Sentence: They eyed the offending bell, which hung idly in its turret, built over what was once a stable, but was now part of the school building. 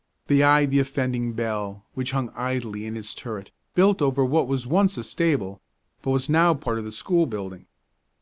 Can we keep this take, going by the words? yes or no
yes